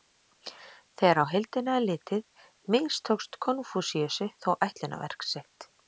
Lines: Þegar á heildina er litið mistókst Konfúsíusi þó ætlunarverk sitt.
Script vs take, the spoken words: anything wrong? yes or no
no